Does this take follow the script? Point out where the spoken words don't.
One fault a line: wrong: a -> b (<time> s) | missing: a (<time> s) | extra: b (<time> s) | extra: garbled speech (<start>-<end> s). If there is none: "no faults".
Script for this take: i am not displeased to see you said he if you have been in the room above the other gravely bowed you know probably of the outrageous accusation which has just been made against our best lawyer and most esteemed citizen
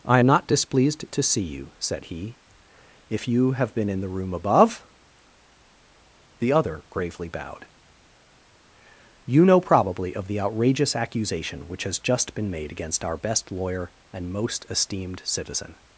no faults